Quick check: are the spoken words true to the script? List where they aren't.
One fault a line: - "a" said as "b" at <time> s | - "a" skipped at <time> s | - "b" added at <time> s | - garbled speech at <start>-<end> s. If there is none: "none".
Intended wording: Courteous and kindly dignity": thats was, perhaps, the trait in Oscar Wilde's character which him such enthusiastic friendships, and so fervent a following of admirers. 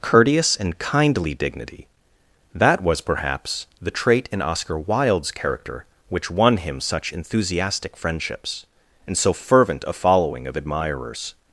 - "thats" said as "that" at 2.5 s
- "won" added at 6.3 s